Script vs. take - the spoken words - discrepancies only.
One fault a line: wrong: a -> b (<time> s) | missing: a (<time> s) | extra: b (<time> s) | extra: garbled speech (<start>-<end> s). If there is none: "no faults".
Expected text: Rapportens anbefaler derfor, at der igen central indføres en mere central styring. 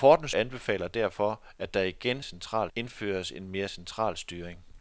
no faults